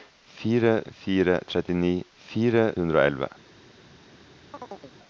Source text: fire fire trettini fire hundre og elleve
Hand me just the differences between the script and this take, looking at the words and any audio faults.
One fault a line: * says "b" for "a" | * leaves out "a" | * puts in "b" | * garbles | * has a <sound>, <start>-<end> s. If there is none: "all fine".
* has a chirp, 4.5-4.9 s